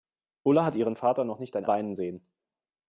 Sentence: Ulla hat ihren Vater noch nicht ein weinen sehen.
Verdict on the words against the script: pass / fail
pass